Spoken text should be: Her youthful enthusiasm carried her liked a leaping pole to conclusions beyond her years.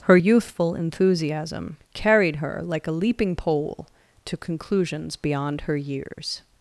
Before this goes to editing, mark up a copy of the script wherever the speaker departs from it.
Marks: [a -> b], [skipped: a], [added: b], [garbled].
Her youthful enthusiasm carried her [liked -> like] a leaping pole to conclusions beyond her years.